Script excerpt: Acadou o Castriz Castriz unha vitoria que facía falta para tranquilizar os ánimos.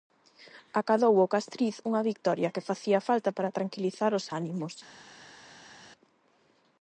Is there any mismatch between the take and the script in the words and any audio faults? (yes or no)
yes